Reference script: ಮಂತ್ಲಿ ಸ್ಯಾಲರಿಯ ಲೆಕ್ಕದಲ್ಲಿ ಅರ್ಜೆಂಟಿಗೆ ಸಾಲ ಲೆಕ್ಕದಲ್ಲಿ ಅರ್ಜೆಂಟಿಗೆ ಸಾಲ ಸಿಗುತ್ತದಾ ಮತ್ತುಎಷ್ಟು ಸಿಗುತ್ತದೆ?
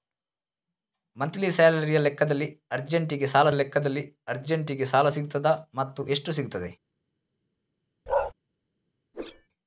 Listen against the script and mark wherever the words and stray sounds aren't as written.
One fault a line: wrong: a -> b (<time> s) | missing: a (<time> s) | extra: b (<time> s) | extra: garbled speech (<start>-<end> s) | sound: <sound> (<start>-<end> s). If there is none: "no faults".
sound: bark (8.1-8.3 s)
sound: whoosh (9.1-9.5 s)